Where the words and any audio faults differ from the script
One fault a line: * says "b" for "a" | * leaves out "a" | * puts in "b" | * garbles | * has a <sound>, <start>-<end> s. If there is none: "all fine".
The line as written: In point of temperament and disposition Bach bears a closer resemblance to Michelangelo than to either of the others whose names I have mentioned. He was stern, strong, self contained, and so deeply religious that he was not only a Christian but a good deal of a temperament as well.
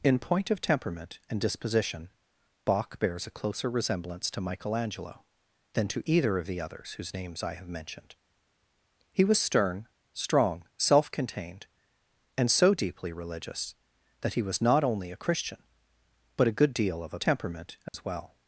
* has a dropout, 17.9-17.9 s